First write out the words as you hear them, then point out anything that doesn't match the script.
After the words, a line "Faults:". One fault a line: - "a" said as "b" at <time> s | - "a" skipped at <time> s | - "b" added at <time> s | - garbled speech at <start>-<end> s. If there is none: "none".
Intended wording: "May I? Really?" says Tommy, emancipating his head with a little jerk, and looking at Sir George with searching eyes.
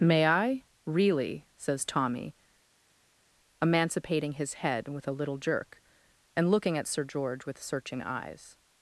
"May I? Really?" says Tommy, emancipating his head with a little jerk, and looking at Sir George with searching eyes.
Faults:
none